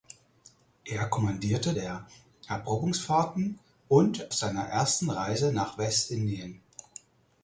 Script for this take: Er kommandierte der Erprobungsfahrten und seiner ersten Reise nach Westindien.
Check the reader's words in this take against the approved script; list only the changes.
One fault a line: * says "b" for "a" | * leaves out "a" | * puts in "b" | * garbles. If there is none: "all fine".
all fine